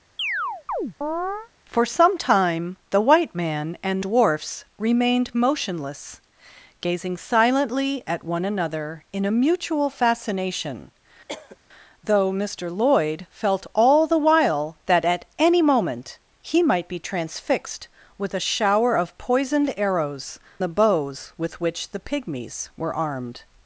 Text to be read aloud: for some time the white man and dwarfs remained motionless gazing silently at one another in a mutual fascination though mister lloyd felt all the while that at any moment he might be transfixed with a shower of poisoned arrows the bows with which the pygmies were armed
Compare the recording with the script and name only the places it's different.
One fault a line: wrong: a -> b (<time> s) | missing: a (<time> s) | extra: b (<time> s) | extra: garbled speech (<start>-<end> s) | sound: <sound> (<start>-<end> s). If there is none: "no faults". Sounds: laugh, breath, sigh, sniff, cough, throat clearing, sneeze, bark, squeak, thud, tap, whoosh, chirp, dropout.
sound: chirp (0.2-1.5 s)
sound: cough (11.3-11.6 s)